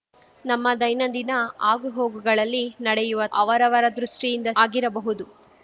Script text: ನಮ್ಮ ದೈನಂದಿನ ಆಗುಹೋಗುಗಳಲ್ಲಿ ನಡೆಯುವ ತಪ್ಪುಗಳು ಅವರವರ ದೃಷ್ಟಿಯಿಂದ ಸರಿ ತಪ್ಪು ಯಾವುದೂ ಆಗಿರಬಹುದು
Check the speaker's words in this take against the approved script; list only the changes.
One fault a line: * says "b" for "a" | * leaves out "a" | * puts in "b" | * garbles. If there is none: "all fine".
* leaves out "ತಪ್ಪುಗಳು"
* leaves out "ಸರಿ ತಪ್ಪು ಯಾವುದೂ"